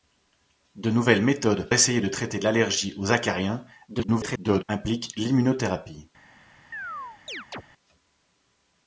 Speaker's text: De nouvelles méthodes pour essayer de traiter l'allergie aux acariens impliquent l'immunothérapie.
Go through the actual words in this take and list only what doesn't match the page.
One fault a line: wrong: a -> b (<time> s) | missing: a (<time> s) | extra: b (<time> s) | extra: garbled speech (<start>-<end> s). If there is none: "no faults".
missing: pour (1.7 s)
extra: garbled speech (3.9-4.6 s)